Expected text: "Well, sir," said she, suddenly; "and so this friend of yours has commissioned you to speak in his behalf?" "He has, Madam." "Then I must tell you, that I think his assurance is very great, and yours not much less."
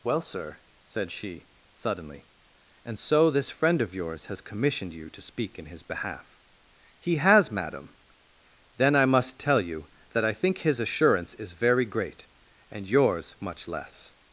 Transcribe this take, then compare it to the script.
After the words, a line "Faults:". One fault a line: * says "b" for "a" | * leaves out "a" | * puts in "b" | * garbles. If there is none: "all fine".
"Well, sir," said she, suddenly; "and so this friend of yours has commissioned you to speak in his behalf?" "He has, Madam." "Then I must tell you, that I think his assurance is very great, and yours much less."
Faults:
* leaves out "not"